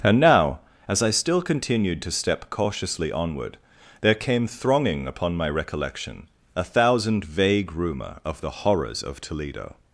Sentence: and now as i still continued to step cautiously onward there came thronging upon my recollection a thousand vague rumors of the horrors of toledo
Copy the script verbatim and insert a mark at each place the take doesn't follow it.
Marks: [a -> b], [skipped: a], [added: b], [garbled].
and now as i still continued to step cautiously onward there came thronging upon my recollection a thousand vague [rumors -> rumor] of the horrors of toledo